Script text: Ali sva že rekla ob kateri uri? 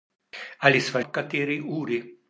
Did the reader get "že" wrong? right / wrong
wrong